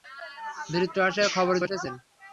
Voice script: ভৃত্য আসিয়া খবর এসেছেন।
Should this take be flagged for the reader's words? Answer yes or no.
no